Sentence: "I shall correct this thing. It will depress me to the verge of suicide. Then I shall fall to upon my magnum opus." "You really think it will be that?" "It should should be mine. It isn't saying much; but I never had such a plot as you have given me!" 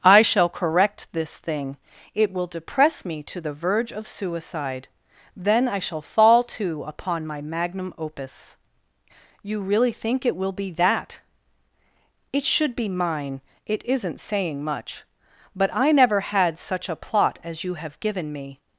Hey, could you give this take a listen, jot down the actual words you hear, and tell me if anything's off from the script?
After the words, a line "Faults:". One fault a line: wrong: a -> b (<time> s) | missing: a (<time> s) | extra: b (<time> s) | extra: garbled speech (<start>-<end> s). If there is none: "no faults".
"I shall correct this thing. It will depress me to the verge of suicide. Then I shall fall to upon my magnum opus." "You really think it will be that?" "It should be mine. It isn't saying much; but I never had such a plot as you have given me!"
Faults:
missing: should (12.7 s)